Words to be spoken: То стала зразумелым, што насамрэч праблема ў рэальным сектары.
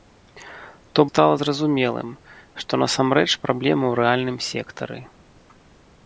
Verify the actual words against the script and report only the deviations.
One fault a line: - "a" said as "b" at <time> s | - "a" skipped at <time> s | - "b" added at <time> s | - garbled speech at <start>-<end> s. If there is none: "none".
none